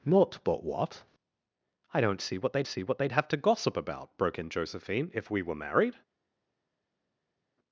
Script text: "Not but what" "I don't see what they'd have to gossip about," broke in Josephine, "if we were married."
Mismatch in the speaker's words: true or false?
true